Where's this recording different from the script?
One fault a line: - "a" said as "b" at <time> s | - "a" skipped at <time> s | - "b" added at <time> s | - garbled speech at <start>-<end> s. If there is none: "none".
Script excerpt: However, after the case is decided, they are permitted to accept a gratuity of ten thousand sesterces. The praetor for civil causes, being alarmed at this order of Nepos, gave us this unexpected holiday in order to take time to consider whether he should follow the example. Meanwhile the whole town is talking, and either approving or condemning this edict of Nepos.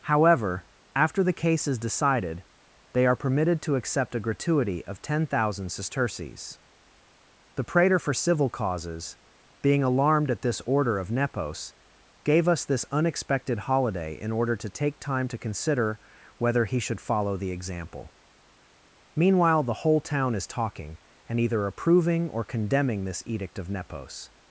none